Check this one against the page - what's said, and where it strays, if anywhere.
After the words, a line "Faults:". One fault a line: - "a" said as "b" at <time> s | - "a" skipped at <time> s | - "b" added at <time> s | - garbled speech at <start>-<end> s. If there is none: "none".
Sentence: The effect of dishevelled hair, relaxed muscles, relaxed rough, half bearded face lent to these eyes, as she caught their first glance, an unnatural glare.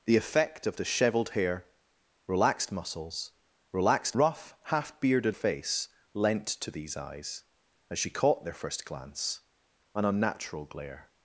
The effect of dishevelled hair, relaxed muscles, relaxed rough, half bearded face lent to these eyes, as she caught their first glance, an unnatural glare.
Faults:
none